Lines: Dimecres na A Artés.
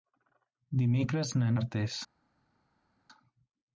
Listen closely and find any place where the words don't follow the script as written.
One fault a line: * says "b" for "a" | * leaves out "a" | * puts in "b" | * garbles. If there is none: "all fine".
all fine